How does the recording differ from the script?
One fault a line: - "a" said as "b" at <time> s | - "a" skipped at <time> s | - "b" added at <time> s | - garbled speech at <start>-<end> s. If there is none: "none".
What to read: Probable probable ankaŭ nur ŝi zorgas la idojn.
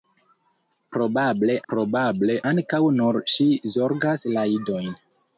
none